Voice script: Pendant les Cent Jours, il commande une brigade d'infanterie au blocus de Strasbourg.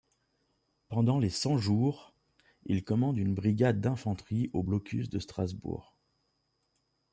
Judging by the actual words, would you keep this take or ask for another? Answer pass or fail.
pass